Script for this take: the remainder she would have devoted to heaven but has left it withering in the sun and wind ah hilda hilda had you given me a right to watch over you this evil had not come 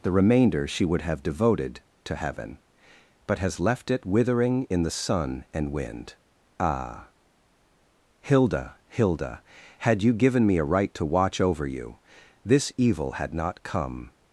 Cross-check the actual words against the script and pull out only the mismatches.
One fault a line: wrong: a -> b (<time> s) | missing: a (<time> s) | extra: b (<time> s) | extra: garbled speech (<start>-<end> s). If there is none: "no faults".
no faults